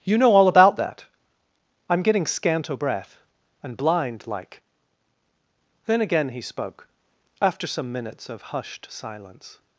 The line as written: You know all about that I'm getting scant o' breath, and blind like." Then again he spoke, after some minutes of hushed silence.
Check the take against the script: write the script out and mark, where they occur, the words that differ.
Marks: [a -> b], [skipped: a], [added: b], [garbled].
You know all about that I'm getting scant o' breath, and blind like." Then again he spoke, after some minutes of hushed silence.